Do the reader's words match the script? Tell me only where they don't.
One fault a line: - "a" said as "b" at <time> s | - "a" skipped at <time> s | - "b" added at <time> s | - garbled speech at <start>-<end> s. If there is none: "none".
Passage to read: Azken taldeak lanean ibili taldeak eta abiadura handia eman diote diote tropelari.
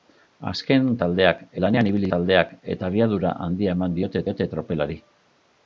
none